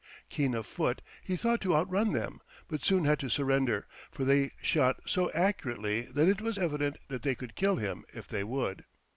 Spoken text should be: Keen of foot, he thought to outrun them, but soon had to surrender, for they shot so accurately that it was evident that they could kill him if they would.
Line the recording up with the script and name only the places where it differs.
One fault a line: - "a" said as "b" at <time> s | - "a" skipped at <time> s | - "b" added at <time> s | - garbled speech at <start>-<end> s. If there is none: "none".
none